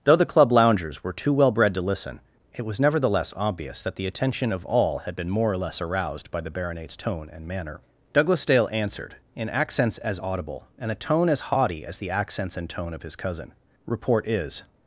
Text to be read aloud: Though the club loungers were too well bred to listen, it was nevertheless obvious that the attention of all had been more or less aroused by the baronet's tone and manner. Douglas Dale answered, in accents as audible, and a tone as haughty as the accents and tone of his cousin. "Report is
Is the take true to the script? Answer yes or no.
yes